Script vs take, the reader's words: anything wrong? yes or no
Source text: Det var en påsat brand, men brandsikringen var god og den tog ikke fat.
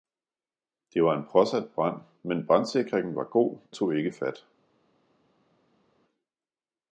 yes